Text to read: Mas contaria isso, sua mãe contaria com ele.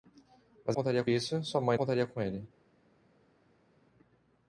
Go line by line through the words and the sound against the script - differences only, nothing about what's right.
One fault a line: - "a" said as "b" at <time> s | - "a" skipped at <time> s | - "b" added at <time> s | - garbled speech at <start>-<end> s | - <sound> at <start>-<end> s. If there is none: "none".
none